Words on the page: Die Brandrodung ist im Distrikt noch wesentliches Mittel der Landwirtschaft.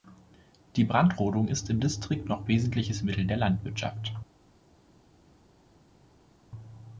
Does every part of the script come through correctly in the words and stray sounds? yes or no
yes